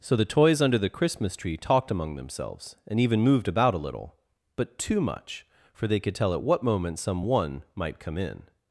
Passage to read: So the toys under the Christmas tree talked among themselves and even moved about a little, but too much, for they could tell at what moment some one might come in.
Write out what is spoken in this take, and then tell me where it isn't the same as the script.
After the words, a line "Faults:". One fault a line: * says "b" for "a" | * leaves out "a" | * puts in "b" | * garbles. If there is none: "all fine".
So the toys under the Christmas tree talked among themselves and even moved about a little, but too much, for they could tell at what moment some one might come in.
Faults:
all fine